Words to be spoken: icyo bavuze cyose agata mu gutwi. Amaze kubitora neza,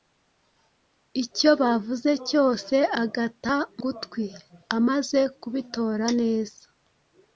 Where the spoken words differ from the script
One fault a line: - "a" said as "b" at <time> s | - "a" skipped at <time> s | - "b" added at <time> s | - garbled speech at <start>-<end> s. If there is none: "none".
- "mu" skipped at 3.5 s